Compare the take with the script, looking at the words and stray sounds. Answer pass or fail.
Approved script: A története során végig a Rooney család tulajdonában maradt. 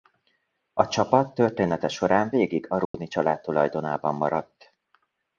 fail